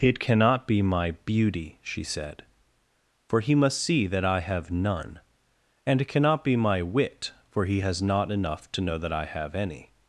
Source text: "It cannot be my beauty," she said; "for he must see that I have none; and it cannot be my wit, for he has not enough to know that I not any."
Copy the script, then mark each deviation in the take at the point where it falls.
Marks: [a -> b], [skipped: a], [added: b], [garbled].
"It cannot be my beauty," she said; "for he must see that I have none; and it cannot be my wit, for he has not enough to know that I [not -> have] any."